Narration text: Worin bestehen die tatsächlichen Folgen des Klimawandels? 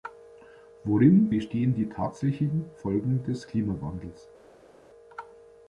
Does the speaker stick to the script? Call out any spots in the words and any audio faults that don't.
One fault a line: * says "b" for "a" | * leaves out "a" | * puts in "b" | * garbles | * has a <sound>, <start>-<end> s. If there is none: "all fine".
all fine